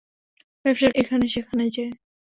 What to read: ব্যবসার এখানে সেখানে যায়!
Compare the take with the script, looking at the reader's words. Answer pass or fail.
pass